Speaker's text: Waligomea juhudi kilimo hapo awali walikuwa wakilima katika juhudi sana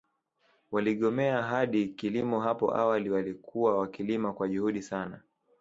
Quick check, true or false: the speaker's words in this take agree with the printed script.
false